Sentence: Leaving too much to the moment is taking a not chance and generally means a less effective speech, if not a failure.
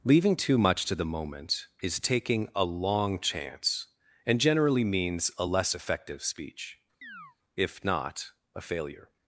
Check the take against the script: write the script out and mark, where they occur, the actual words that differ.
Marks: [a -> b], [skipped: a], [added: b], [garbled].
Leaving too much to the moment is taking a [not -> long] chance and generally means a less effective speech, if not a failure.